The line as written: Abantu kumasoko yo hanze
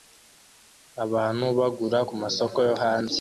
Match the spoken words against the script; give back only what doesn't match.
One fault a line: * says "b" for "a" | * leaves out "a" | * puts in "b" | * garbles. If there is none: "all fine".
* puts in "bagura"